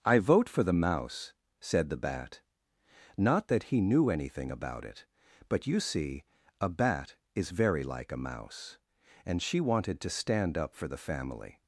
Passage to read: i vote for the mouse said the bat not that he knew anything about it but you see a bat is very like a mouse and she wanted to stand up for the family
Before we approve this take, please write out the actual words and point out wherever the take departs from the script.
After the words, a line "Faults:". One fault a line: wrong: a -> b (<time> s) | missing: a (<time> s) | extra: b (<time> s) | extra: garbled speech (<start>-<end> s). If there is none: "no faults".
i vote for the mouse said the bat not that he knew anything about it but you see a bat is very like a mouse and she wanted to stand up for the family
Faults:
no faults